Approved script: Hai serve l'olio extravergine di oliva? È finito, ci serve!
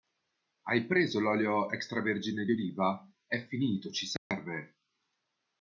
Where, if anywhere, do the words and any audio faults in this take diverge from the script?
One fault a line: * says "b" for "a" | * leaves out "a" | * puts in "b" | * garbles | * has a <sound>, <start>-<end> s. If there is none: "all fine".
* says "preso" for "serve"
* has a dropout, 4.2-4.3 s